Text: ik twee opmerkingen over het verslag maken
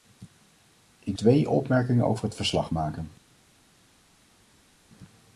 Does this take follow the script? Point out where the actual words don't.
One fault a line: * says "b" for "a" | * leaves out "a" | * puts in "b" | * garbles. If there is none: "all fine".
all fine